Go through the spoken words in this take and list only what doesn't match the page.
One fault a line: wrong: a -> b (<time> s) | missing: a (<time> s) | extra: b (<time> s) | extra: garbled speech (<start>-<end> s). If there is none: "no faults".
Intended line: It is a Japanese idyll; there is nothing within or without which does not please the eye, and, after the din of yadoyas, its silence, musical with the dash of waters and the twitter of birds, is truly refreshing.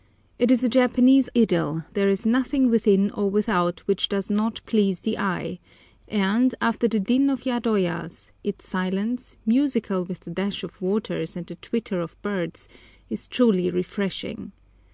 no faults